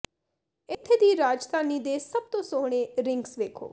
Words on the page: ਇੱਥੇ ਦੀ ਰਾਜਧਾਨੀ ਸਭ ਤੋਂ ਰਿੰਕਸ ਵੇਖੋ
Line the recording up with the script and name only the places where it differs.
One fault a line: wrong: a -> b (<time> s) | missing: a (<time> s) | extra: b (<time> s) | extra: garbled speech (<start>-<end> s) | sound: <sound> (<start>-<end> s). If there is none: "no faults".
sound: dropout (0.7-0.8 s)
extra: ਦੇ (1.8 s)
extra: ਸੋਹਣੇ (2.4 s)